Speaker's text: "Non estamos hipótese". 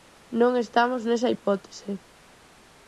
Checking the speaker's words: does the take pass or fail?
fail